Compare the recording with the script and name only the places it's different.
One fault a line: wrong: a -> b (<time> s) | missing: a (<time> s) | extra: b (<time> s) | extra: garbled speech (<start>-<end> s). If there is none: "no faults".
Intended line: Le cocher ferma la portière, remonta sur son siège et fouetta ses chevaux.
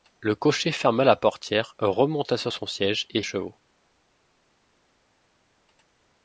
missing: fouetta ses (3.2 s)